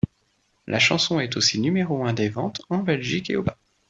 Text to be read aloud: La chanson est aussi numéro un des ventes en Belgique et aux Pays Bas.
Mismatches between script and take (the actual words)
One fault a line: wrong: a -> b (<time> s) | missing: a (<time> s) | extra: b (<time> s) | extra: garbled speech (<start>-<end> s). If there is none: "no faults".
missing: Pays (3.4 s)